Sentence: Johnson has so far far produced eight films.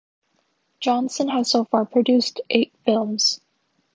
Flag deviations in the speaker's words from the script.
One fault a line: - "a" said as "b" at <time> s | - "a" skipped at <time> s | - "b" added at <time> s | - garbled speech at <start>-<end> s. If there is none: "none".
- "far" skipped at 1.8 s